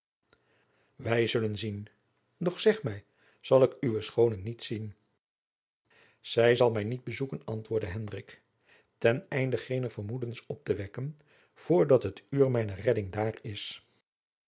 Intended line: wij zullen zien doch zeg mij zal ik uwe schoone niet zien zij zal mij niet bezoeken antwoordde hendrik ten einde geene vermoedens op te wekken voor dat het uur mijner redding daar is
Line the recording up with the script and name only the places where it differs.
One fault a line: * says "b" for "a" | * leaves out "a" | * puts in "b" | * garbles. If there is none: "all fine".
all fine